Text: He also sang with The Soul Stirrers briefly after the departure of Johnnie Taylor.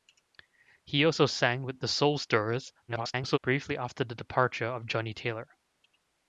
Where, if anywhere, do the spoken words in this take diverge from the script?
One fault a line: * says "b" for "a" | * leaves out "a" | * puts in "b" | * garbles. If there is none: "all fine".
* garbles